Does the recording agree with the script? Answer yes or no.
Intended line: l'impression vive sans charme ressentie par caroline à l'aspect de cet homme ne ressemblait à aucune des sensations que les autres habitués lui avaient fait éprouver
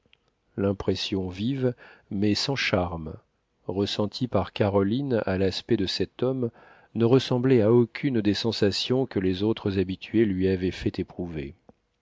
no